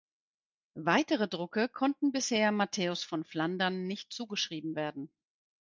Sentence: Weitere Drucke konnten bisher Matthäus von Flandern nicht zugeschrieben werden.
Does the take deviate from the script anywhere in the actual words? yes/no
no